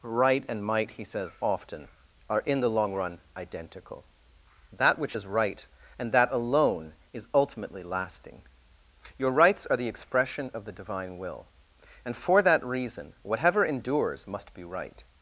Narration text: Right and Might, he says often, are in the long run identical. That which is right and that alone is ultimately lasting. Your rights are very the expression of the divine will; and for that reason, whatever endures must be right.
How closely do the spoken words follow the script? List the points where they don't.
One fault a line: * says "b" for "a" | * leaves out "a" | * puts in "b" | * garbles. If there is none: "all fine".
* leaves out "very"